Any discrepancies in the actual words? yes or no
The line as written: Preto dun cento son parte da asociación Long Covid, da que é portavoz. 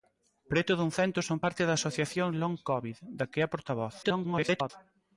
yes